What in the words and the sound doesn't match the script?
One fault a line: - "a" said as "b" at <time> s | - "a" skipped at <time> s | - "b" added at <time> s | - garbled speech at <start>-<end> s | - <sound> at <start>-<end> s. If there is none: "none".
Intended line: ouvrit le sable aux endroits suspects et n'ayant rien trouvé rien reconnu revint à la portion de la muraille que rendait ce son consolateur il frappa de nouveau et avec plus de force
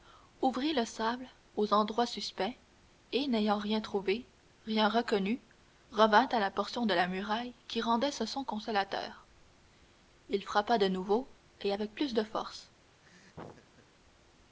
- "que" said as "qui" at 7.7 s
- laugh at 13.0-13.9 s